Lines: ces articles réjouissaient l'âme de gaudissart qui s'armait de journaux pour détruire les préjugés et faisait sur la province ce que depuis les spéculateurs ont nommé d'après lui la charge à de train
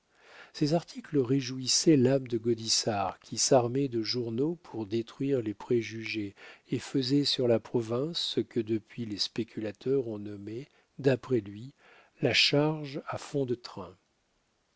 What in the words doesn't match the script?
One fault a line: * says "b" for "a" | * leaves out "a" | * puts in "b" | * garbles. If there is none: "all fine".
* puts in "fond"